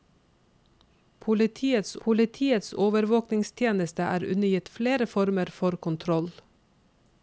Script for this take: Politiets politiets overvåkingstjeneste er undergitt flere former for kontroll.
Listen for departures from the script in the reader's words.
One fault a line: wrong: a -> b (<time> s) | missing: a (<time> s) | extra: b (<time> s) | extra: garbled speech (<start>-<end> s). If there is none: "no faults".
no faults